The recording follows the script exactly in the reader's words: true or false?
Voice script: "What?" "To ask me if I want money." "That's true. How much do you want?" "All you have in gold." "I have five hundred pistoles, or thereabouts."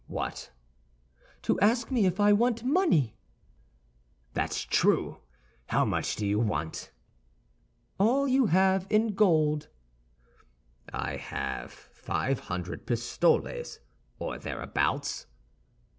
true